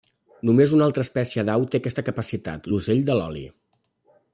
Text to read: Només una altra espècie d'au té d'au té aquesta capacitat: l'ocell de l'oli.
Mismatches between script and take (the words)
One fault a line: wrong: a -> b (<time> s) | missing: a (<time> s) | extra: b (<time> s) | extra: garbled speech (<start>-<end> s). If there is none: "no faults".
missing: d'au té (1.8 s)